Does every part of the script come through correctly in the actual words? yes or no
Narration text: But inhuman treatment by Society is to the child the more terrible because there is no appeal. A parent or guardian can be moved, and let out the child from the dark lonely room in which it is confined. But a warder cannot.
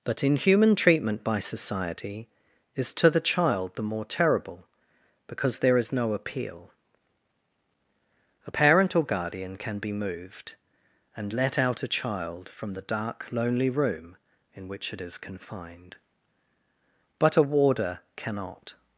no